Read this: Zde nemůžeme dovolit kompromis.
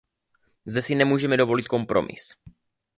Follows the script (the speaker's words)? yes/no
no